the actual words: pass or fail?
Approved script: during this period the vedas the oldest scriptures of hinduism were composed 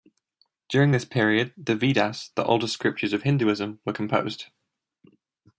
pass